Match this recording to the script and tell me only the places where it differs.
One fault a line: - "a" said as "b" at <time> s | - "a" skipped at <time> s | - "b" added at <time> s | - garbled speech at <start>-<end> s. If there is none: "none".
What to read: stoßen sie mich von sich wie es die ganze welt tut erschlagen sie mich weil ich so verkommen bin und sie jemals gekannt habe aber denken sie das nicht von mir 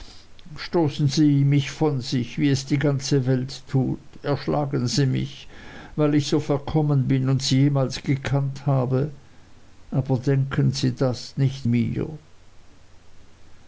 - "von" skipped at 11.7 s